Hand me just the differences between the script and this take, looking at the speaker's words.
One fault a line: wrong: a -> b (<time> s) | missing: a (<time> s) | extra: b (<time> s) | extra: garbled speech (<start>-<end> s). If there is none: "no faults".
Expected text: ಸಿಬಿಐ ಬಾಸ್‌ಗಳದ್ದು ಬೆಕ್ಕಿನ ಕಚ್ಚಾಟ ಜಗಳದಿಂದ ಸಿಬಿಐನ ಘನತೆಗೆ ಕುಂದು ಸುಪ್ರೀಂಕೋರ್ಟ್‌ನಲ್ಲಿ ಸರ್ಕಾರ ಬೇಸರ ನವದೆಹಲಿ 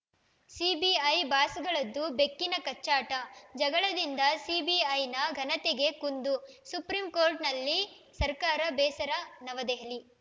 no faults